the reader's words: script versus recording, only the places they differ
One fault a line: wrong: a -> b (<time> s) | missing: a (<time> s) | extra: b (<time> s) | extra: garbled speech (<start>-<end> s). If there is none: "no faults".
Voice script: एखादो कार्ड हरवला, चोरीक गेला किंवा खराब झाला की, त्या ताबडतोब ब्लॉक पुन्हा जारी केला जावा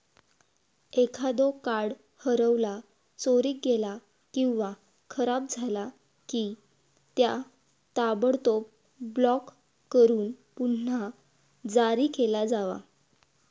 extra: करून (9.9 s)